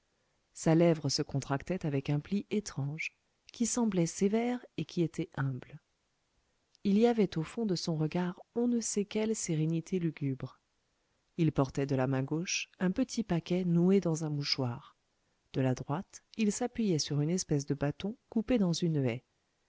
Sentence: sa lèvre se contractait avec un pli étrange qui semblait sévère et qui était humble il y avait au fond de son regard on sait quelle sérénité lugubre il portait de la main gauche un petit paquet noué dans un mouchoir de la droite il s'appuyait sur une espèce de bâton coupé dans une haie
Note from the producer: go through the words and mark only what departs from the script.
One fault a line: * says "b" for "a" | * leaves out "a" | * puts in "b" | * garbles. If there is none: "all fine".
* puts in "ne"